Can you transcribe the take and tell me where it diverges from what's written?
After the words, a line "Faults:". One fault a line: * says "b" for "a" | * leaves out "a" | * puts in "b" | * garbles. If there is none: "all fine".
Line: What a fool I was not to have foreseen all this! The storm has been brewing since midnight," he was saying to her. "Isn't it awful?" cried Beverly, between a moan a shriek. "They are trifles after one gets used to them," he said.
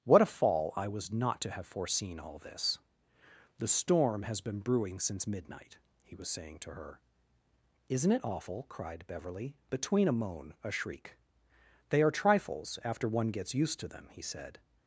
What a fall I was not to have foreseen all this! The storm has been brewing since midnight," he was saying to her. "Isn't it awful?" cried Beverly, between a moan a shriek. "They are trifles after one gets used to them," he said.
Faults:
* says "fall" for "fool"